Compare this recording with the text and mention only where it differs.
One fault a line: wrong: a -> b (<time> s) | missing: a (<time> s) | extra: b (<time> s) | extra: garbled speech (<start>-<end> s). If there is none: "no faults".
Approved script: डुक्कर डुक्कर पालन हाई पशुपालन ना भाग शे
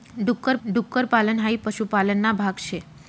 no faults